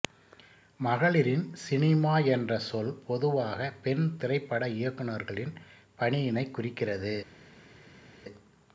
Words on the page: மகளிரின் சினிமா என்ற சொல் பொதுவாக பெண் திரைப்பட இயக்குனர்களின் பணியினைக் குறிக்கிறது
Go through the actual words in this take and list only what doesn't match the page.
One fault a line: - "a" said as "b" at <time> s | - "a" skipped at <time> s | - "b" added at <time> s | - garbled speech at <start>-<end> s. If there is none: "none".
none